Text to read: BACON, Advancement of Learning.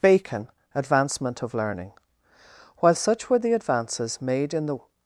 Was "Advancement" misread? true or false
false